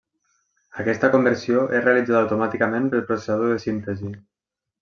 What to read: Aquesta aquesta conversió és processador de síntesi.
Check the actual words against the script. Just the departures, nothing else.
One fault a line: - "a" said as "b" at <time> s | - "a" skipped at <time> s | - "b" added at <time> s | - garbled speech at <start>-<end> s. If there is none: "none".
- "aquesta" skipped at 1.1 s
- "realitzada automàticament pel" added at 1.9 s